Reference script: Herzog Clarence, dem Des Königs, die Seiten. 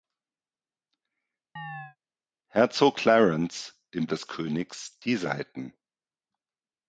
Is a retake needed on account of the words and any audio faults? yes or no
yes